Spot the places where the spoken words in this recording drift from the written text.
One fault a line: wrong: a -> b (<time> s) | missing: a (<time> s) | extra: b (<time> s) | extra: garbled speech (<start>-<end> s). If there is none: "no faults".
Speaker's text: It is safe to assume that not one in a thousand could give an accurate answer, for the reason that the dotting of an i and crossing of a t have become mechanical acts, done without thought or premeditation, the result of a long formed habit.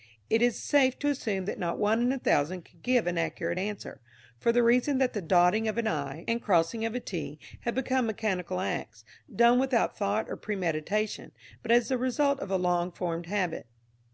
extra: but as (11.6 s)